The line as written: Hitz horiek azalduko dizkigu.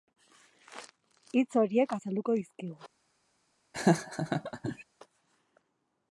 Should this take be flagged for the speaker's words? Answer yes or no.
no